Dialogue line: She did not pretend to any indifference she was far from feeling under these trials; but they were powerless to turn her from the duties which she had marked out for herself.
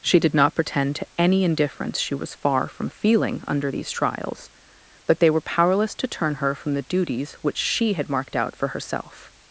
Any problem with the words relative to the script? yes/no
no